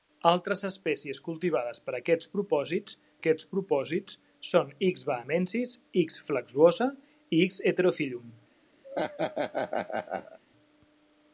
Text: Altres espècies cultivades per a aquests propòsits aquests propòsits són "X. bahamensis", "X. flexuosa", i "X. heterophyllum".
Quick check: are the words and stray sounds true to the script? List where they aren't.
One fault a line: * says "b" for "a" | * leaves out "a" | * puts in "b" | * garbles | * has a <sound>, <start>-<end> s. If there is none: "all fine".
* has a laugh, 8.8-10.4 s